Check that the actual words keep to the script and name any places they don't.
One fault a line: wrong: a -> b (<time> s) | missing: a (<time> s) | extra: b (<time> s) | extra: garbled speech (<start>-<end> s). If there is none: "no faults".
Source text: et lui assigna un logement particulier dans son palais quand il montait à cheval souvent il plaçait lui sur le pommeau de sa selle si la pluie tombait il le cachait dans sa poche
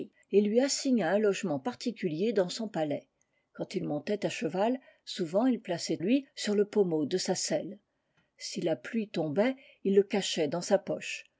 no faults